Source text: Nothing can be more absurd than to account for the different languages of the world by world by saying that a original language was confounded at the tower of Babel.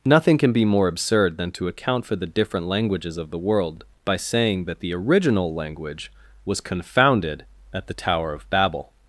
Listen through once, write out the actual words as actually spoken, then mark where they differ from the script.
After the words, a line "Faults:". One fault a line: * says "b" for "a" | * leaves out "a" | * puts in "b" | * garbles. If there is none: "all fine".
Nothing can be more absurd than to account for the different languages of the world by saying that the original language was confounded at the tower of Babel.
Faults:
* leaves out "world by"
* says "the" for "a"